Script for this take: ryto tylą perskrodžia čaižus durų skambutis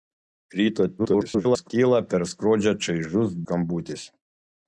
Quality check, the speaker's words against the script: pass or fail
fail